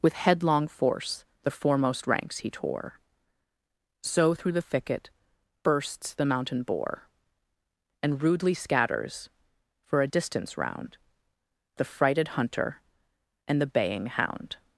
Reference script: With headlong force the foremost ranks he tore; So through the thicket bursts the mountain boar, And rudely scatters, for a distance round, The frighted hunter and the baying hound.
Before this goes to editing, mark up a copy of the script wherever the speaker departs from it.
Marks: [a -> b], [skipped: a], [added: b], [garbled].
With headlong force the foremost ranks he tore; So through the thicket bursts the mountain boar, And rudely scatters, for a distance round, The frighted hunter and the baying hound.